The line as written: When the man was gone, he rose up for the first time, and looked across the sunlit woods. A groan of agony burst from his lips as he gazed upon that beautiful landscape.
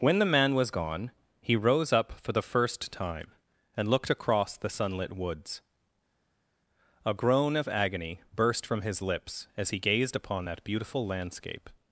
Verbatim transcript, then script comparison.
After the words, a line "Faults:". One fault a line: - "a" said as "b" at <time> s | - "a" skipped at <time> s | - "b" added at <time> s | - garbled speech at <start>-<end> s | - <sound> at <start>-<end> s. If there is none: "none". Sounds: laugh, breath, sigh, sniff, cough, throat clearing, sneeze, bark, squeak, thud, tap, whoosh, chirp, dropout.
When the man was gone, he rose up for the first time, and looked across the sunlit woods. A groan of agony burst from his lips as he gazed upon that beautiful landscape.
Faults:
none